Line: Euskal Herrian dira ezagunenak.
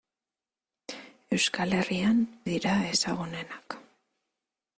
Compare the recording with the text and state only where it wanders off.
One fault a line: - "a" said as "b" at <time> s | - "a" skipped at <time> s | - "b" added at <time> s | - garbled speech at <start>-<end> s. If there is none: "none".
none